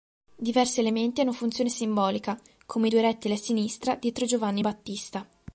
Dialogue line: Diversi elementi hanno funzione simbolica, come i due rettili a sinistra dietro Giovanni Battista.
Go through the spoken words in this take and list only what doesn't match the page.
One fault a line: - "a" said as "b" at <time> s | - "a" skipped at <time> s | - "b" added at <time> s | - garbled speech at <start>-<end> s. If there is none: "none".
none